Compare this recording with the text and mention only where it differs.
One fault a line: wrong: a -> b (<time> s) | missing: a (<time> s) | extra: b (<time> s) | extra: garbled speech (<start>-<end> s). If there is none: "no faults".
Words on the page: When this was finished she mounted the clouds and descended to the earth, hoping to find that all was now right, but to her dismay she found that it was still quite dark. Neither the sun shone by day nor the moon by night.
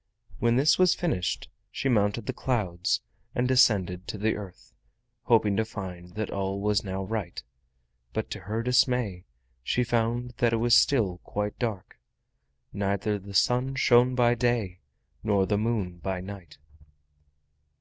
no faults